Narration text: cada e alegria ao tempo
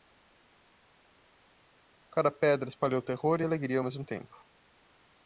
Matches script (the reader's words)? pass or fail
fail